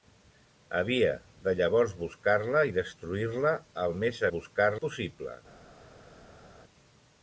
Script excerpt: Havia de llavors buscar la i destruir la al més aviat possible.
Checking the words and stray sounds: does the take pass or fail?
fail